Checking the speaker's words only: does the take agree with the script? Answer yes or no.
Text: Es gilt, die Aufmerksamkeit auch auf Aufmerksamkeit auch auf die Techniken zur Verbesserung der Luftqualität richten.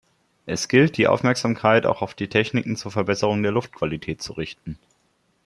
no